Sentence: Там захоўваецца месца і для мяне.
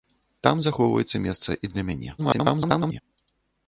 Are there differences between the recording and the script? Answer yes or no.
yes